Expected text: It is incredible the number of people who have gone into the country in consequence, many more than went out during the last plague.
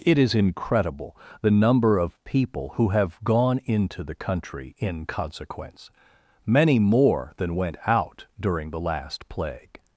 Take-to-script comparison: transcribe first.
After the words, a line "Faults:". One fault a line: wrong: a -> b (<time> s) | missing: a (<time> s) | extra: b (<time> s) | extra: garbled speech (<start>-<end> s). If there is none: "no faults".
It is incredible the number of people who have gone into the country in consequence, many more than went out during the last plague.
Faults:
no faults